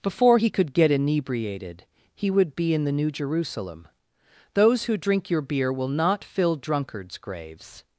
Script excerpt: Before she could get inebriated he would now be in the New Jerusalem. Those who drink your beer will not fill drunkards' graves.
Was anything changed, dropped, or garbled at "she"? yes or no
yes